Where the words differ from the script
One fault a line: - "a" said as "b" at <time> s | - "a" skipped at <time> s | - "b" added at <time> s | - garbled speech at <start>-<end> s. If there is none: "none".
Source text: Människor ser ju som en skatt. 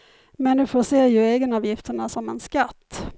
- "egenavgifterna" added at 1.2 s